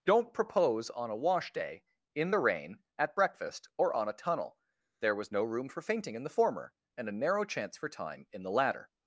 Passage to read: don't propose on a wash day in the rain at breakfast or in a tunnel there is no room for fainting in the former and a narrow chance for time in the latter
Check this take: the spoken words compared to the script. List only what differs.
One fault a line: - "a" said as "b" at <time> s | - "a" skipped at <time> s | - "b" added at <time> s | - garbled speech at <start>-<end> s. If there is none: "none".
- "in" said as "on" at 4.0 s
- "is" said as "was" at 5.2 s